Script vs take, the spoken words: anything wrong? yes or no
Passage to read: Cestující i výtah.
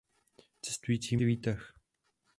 no